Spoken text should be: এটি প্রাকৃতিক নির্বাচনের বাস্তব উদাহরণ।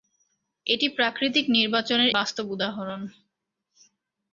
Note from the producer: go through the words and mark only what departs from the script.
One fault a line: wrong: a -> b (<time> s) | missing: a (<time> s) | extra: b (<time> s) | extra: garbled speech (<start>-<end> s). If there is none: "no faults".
no faults